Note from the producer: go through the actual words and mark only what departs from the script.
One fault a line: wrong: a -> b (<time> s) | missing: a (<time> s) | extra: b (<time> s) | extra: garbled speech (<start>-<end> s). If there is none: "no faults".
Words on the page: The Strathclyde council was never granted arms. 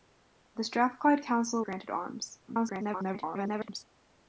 missing: was never (1.6 s)
extra: garbled speech (2.5-3.8 s)